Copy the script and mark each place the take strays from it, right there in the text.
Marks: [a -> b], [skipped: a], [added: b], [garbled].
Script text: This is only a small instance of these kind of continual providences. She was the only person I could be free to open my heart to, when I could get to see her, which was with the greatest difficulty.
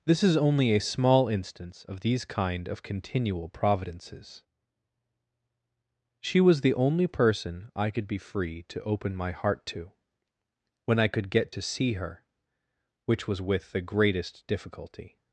This is only a small instance of these kind of continual providences. She was the only person I could be free to open my heart to, when I could get to see her, which was with the greatest difficulty.